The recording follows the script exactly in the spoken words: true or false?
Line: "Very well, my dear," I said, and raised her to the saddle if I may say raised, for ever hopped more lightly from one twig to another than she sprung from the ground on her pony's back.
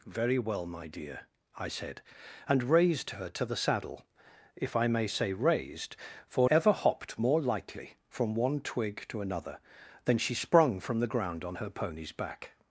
true